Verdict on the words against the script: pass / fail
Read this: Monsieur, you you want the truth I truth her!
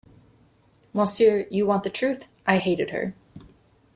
fail